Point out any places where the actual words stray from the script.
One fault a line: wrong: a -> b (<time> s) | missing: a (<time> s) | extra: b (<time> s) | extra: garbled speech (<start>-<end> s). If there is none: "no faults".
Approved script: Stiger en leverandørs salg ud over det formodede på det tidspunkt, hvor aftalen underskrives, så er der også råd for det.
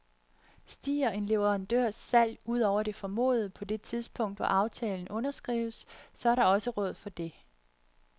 no faults